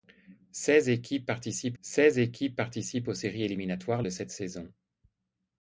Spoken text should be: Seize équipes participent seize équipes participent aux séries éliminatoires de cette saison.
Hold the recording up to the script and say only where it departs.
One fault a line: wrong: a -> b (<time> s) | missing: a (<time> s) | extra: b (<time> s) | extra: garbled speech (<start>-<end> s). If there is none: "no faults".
no faults